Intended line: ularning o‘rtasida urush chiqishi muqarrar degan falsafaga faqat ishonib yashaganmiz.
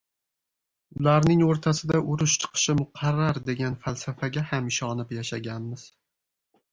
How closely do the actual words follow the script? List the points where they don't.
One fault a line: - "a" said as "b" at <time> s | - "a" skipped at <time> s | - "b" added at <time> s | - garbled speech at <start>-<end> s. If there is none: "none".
- "faqat" said as "ham" at 4.5 s